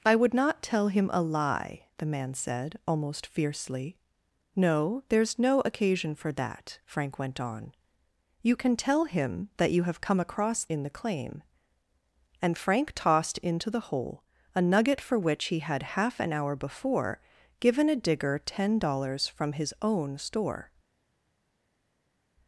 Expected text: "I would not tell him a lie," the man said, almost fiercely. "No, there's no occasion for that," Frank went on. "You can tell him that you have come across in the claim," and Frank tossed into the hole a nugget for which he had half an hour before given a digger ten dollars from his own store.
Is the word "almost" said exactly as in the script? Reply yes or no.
yes